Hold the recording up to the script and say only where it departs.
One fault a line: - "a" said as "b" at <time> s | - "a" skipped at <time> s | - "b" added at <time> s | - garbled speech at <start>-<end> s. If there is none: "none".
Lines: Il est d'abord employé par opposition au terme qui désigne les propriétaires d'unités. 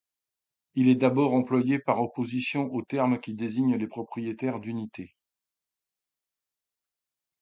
none